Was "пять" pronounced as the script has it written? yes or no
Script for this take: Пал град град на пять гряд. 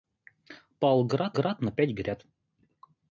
yes